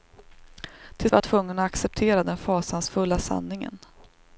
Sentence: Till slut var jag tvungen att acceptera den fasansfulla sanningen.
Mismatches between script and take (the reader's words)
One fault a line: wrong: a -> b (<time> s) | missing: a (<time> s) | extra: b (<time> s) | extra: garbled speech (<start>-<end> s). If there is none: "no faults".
missing: slut (1.1 s)